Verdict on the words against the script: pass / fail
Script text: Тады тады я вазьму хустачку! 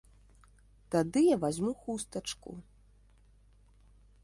fail